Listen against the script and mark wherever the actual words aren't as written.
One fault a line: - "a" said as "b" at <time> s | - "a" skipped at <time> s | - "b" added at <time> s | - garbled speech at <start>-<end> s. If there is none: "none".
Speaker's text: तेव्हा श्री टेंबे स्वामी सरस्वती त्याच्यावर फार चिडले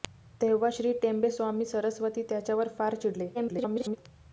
- garbled speech at 3.3-4.0 s